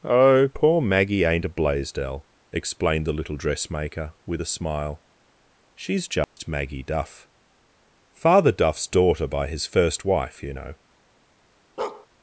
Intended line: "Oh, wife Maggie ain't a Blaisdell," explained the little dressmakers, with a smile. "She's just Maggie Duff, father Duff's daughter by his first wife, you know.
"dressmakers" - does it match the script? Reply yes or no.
no